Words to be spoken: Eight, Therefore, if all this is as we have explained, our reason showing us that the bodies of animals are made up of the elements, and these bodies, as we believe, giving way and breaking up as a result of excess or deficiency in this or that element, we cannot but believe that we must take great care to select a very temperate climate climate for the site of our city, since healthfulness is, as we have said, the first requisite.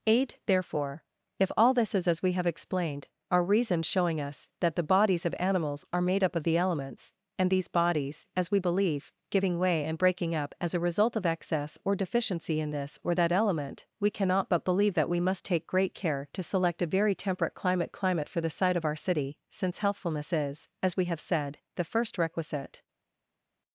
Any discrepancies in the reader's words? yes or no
no